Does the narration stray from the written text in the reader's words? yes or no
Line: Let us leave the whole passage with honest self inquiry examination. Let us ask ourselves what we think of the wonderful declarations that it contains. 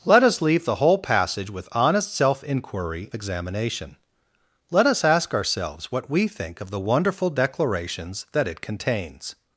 no